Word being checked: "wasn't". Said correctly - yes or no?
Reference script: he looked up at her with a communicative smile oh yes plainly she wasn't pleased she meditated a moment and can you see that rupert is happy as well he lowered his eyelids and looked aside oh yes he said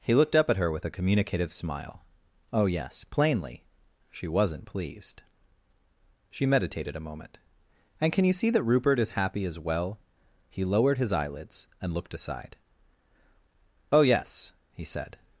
yes